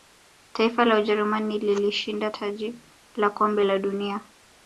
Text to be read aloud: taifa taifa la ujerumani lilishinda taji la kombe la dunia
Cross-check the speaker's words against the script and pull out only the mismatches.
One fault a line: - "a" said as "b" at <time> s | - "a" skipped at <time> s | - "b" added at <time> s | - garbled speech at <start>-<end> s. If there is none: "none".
- "taifa" skipped at 0.8 s